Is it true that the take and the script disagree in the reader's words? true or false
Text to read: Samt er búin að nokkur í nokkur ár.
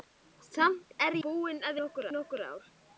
false